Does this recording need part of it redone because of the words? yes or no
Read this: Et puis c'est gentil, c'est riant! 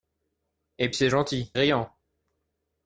yes